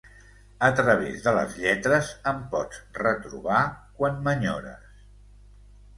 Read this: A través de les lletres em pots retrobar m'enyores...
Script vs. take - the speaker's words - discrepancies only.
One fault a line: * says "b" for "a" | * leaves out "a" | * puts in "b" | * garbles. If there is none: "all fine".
* puts in "quan"